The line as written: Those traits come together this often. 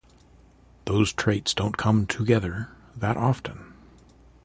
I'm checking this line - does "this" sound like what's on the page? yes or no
no